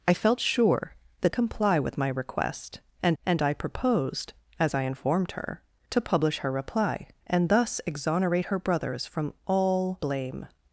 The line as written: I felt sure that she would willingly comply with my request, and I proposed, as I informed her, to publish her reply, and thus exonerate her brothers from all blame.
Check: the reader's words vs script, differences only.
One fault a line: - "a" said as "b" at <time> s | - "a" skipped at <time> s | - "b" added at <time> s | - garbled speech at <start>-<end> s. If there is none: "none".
- "she would willingly" skipped at 1.4 s
- "and" added at 3.2 s